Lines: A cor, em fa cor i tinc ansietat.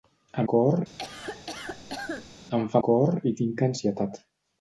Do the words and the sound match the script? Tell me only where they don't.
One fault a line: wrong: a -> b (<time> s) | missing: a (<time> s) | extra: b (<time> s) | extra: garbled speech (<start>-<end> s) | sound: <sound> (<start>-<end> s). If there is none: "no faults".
sound: cough (1.0-2.3 s)